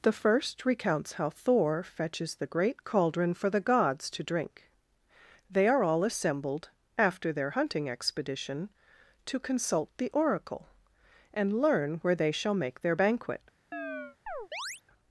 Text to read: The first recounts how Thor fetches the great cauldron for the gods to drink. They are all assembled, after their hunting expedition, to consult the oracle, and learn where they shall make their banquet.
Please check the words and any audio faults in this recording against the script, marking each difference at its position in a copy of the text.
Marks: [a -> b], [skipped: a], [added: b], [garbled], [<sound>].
The first recounts how Thor fetches the great cauldron for the gods to drink. They are all assembled, after their hunting expedition, to consult the oracle, and learn where they shall make their banquet. [chirp]